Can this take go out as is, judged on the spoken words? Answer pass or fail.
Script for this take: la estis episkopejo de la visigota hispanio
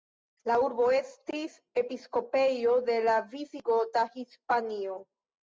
fail